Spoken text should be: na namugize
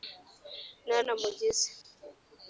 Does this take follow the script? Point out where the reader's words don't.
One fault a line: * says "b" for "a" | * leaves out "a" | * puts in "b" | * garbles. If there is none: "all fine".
all fine